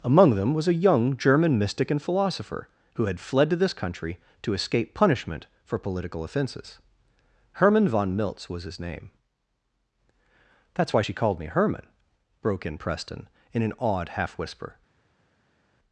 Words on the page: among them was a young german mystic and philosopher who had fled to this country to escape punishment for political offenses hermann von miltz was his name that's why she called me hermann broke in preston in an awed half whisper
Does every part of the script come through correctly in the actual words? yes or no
yes